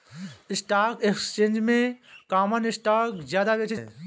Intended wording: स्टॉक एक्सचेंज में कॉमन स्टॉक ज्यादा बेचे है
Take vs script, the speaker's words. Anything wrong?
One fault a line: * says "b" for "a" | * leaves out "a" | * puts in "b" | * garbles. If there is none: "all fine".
all fine